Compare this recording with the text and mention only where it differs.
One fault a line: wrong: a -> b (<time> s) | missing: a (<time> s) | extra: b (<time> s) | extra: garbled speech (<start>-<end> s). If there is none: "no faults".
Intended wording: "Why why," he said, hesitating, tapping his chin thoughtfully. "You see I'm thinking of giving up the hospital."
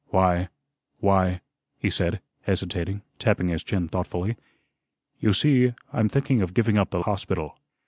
no faults